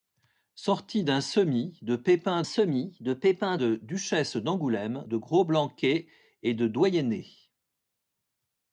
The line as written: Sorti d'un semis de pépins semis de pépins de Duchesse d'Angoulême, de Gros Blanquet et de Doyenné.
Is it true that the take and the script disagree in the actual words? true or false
false